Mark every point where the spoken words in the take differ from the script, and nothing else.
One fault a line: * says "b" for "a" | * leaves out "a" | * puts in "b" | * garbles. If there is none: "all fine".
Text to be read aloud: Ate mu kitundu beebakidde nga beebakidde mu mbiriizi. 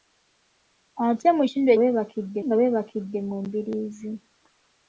all fine